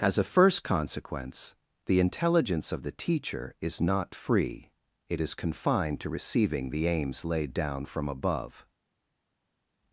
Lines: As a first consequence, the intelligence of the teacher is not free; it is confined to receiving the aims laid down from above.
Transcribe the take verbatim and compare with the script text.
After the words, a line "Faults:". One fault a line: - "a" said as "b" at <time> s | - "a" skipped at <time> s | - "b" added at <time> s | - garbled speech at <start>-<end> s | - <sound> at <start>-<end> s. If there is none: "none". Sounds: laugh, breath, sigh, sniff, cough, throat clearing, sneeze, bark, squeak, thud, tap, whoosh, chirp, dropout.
As a first consequence, the intelligence of the teacher is not free; it is confined to receiving the aims laid down from above.
Faults:
none